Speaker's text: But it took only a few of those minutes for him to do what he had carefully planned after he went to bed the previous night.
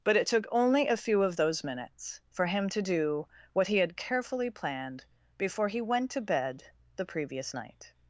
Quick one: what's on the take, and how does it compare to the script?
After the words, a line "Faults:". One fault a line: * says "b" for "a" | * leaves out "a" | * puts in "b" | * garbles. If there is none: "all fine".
But it took only a few of those minutes for him to do what he had carefully planned before he went to bed the previous night.
Faults:
* says "before" for "after"